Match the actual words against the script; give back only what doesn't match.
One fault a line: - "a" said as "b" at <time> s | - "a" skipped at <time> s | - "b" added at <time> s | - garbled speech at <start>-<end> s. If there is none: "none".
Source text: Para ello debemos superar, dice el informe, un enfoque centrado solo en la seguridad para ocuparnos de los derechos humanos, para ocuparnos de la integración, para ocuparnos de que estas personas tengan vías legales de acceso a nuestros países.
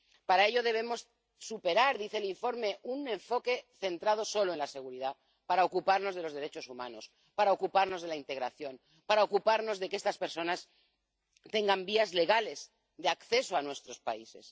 none